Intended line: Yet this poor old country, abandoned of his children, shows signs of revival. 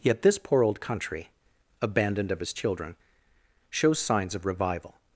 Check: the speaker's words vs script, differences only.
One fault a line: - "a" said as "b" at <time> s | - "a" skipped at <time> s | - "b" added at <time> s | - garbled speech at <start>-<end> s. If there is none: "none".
none